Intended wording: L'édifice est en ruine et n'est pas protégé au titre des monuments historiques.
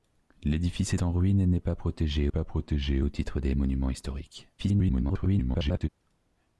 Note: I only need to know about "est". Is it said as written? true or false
false